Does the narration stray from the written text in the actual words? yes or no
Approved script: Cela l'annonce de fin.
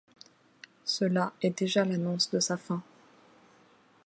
yes